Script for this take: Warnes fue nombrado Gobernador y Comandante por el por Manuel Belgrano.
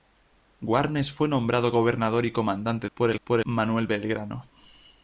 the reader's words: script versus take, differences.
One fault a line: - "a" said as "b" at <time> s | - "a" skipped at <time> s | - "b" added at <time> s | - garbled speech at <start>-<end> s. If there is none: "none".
none